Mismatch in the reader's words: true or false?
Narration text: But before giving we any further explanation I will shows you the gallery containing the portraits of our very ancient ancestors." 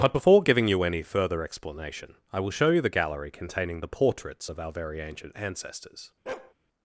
true